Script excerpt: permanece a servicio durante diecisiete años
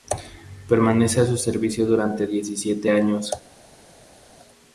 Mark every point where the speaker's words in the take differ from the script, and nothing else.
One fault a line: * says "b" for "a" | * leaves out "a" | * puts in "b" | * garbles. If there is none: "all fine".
* puts in "su"